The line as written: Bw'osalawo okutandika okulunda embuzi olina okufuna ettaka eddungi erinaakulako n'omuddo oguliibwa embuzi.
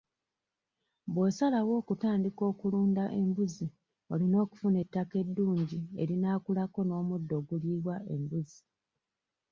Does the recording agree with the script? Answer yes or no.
yes